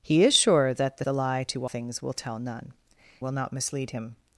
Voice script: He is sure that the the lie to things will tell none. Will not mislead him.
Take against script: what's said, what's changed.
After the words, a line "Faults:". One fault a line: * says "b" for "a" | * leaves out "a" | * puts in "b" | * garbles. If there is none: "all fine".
He is sure that the the lie to things will tell none. Will not mislead him.
Faults:
all fine